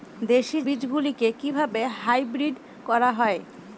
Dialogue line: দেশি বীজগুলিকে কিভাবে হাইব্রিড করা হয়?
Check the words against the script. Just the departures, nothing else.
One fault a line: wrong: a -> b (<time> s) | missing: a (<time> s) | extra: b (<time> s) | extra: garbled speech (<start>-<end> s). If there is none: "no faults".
no faults